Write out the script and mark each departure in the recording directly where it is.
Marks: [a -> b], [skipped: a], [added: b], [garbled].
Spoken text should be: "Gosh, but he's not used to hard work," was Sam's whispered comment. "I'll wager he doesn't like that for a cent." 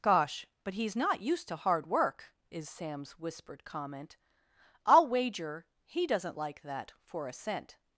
"Gosh, but he's not used to hard work," [was -> is] Sam's whispered comment. "I'll wager he doesn't like that for a cent."